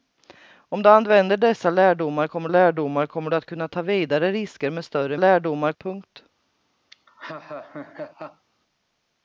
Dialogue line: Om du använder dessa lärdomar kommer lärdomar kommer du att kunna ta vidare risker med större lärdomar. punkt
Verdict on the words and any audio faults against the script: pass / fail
fail